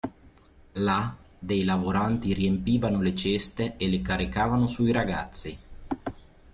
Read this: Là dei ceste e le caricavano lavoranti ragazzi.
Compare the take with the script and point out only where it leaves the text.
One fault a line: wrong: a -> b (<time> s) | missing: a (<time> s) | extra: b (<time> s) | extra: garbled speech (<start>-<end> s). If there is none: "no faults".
extra: lavoranti riempivano le (1.6 s)
wrong: lavoranti -> sui (4.7 s)